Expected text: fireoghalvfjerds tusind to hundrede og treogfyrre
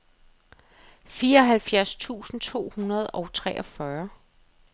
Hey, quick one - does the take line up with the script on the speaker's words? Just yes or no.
yes